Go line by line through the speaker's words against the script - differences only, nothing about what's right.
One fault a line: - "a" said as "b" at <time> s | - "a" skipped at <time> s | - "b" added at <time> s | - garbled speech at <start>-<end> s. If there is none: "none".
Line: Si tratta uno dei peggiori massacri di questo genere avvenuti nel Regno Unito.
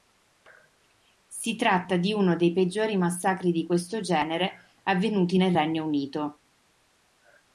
- "di" added at 1.9 s